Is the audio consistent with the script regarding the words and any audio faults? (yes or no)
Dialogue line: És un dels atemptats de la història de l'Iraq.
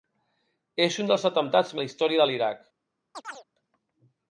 no